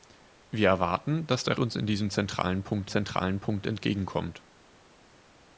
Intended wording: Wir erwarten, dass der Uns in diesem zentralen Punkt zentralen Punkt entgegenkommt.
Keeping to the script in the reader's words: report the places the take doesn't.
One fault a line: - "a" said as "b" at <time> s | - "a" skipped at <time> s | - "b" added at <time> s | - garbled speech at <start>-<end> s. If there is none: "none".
none